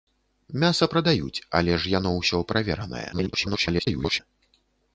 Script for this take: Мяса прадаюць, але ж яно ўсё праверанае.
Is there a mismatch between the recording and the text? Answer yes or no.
yes